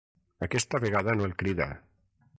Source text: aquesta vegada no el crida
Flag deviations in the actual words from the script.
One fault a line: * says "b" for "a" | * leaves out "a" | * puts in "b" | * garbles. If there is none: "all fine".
all fine